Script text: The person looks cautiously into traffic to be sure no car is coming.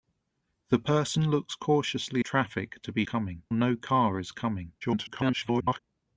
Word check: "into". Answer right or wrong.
wrong